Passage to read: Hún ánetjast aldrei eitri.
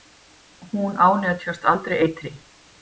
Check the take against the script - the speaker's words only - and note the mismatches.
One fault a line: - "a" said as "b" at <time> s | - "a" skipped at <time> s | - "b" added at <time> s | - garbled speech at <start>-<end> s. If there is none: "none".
none